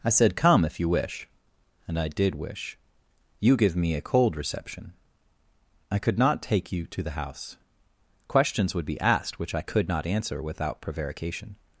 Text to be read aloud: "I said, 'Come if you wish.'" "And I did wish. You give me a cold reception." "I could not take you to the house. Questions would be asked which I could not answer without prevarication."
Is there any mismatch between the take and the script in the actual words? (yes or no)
no